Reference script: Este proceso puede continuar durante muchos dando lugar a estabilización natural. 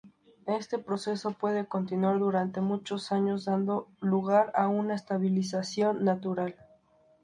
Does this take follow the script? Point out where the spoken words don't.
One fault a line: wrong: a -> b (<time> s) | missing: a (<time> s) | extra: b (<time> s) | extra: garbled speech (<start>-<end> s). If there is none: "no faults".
extra: años (3.1 s)
extra: una (4.7 s)